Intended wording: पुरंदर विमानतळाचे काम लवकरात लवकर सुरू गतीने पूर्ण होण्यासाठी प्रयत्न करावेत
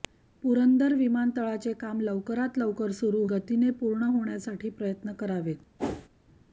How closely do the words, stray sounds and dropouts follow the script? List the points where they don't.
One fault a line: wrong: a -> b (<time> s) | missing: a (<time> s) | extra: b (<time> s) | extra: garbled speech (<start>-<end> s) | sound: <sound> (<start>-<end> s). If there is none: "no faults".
sound: whoosh (5.8-6.1 s)